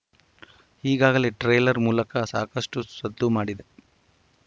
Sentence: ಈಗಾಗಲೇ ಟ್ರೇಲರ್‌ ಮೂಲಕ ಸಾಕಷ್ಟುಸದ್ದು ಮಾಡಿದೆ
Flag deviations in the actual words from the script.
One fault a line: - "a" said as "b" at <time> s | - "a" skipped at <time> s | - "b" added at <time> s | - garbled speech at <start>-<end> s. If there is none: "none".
none